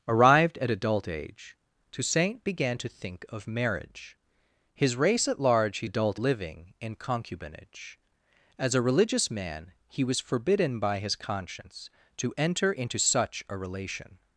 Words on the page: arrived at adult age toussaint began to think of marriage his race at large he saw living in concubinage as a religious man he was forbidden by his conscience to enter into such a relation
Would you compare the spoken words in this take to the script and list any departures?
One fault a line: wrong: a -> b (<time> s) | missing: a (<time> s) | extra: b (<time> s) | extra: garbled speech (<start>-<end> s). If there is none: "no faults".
wrong: saw -> adult (5.8 s)